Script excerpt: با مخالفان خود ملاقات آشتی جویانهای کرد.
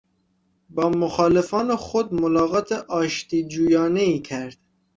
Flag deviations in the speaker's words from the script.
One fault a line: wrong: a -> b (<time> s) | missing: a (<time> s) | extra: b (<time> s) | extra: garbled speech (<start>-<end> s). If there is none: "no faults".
no faults